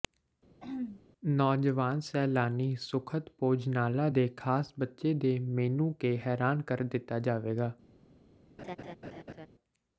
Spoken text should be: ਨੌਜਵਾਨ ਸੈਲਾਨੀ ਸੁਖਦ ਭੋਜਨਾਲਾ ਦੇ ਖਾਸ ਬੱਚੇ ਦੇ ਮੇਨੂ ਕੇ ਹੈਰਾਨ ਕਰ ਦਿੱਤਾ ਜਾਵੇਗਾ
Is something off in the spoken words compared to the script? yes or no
no